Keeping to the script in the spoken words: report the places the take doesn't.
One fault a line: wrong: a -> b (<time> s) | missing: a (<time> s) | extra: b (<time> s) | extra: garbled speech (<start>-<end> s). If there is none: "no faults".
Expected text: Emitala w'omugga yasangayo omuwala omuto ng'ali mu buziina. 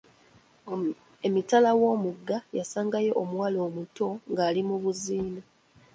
no faults